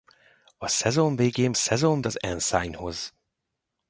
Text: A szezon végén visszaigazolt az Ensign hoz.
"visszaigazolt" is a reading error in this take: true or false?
true